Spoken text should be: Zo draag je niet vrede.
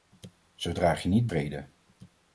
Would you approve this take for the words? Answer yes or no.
yes